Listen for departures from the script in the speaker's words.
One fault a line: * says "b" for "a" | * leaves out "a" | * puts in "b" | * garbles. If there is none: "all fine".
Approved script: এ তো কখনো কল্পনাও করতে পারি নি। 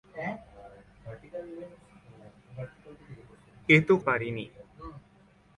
* leaves out "কখনো কল্পনাও করতে"